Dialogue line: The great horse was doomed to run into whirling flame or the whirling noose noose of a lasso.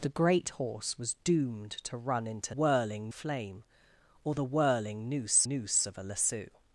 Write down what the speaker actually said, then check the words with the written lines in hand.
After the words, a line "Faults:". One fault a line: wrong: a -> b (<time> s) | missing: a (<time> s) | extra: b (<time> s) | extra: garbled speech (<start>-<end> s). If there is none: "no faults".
The great horse was doomed to run into whirling flame or the whirling noose noose of a lasso.
Faults:
no faults